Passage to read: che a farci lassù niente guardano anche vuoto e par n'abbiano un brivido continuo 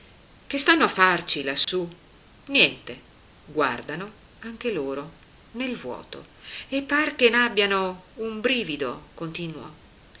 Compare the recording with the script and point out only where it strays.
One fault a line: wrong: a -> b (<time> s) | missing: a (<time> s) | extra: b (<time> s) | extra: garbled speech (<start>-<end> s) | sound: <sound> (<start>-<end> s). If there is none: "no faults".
extra: stanno (0.6 s)
sound: dropout (1.6-1.7 s)
extra: loro nel (4.7 s)
extra: che (7.2 s)